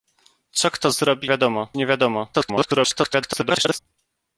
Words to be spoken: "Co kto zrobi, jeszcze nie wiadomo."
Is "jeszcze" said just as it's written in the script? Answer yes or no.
no